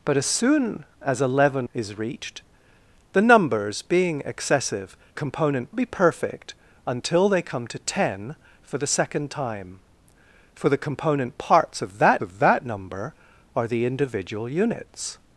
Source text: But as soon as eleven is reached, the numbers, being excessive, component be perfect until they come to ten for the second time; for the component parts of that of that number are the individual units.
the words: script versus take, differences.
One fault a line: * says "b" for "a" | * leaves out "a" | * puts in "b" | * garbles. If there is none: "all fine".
all fine